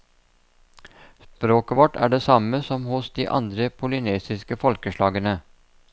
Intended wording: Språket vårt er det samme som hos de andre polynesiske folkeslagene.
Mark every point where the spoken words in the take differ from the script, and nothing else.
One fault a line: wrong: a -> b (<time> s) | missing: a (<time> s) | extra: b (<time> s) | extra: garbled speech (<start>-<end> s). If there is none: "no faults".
no faults